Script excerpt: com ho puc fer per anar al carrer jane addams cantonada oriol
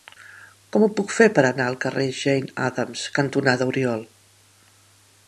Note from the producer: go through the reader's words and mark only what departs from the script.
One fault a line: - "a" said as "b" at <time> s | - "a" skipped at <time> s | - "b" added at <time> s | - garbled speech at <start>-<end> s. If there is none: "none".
none